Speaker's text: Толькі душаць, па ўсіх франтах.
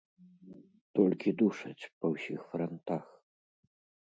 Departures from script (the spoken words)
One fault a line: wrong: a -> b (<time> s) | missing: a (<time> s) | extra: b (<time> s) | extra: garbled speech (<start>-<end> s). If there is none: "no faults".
no faults